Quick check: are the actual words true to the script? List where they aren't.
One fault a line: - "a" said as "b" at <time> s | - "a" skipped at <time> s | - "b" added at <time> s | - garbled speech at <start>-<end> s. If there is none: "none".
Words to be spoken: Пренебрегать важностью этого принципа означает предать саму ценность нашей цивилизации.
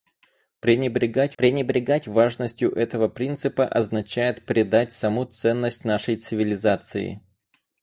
- "пренебрегать" added at 1.4 s